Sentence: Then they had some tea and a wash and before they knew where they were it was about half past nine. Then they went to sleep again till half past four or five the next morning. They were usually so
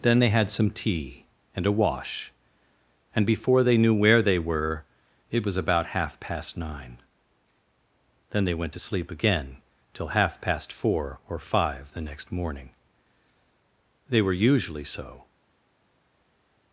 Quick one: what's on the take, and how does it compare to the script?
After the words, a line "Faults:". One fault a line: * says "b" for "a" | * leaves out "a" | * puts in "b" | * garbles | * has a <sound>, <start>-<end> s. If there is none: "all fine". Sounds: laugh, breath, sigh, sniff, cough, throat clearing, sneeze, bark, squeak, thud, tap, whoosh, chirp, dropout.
Then they had some tea and a wash and before they knew where they were it was about half past nine. Then they went to sleep again till half past four or five the next morning. They were usually so
Faults:
all fine